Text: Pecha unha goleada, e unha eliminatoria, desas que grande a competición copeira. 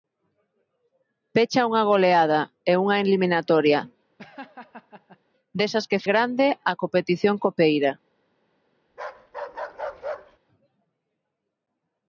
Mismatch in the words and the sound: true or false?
true